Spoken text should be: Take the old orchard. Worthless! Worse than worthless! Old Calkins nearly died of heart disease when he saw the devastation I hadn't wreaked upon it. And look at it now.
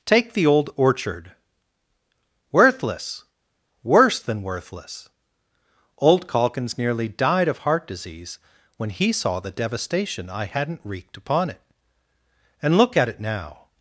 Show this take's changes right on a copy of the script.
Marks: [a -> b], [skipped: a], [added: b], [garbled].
Take the old orchard. Worthless! Worse than worthless! Old Calkins nearly died of heart disease when he saw the devastation I hadn't wreaked upon it. And look at it now.